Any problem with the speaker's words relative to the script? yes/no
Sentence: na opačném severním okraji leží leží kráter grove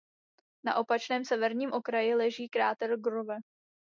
yes